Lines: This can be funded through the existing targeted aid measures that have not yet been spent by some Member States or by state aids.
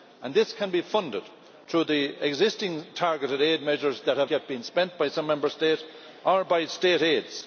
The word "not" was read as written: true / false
false